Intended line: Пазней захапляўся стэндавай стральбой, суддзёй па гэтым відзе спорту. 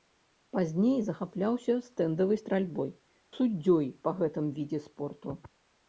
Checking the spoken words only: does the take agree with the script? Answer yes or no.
yes